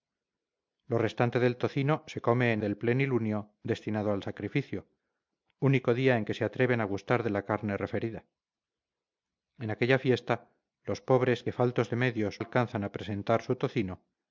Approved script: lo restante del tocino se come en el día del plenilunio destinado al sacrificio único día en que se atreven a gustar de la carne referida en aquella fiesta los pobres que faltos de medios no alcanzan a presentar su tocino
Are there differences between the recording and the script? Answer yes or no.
yes